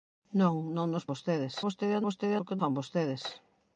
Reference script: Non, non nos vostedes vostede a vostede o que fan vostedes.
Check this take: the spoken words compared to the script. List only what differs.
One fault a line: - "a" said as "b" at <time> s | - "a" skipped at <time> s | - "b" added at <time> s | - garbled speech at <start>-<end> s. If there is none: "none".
none